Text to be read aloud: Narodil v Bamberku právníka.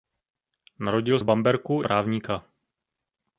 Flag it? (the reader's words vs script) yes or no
no